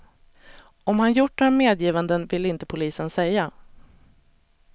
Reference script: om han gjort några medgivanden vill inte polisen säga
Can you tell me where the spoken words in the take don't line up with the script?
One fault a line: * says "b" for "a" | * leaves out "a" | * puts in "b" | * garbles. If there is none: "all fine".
all fine